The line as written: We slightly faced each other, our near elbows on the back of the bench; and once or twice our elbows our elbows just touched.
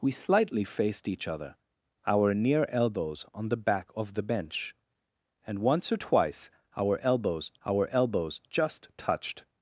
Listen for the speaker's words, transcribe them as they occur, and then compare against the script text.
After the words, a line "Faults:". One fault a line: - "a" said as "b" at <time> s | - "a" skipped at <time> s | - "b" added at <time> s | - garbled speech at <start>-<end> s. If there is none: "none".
We slightly faced each other, our near elbows on the back of the bench; and once or twice our elbows our elbows just touched.
Faults:
none